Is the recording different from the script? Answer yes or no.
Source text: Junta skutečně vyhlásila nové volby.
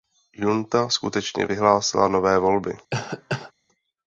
no